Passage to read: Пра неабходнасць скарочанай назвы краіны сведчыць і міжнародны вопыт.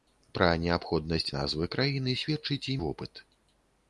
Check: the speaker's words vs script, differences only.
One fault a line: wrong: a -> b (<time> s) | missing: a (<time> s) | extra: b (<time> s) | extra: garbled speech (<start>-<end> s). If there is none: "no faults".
missing: скарочанай (1.3 s)
missing: міжнародны (2.8 s)